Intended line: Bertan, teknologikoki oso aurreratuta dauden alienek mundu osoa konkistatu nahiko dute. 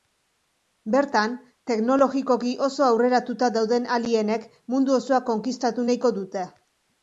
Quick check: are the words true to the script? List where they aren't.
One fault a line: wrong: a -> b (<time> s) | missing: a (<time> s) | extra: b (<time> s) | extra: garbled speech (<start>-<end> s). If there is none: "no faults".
no faults